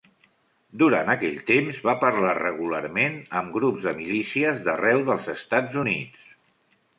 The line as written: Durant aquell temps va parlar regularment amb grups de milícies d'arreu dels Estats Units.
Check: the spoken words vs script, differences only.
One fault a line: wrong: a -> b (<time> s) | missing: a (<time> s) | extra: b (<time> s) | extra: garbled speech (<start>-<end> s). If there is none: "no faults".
no faults